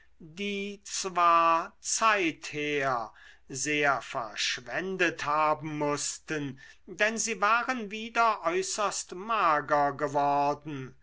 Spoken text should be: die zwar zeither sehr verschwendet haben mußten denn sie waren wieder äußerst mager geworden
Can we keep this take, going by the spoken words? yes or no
yes